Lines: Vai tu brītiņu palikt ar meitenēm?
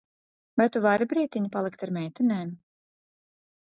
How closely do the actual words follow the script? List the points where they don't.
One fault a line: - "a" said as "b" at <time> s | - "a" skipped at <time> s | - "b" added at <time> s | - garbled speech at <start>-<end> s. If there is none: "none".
- "vari" added at 0.8 s